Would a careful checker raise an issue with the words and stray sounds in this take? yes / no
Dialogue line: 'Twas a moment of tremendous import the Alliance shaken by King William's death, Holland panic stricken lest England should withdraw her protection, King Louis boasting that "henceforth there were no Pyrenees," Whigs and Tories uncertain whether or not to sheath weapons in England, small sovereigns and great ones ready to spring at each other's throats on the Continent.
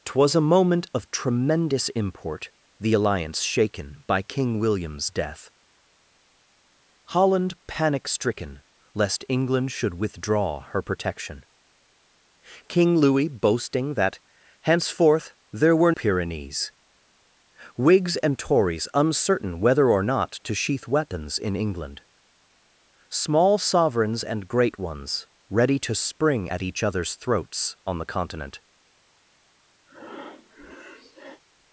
yes